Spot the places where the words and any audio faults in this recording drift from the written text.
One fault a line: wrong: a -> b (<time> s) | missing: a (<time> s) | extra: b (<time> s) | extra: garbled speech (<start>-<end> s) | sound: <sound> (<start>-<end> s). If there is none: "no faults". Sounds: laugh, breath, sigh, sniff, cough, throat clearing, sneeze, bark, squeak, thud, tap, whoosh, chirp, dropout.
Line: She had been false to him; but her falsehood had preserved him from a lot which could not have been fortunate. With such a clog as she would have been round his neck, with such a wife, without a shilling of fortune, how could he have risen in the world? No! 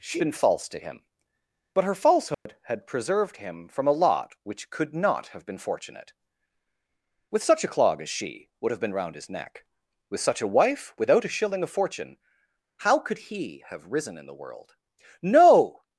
missing: had (0.2 s)
sound: dropout (2.3-2.5 s)